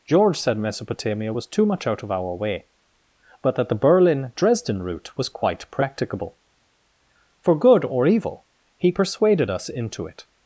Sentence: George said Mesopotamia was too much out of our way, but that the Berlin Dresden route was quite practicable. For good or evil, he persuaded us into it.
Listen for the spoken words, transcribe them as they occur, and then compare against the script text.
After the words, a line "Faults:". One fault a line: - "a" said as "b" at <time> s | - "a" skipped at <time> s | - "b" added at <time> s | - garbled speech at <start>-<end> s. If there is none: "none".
George said Mesopotamia was too much out of our way, but that the Berlin Dresden route was quite practicable. For good or evil, he persuaded us into it.
Faults:
none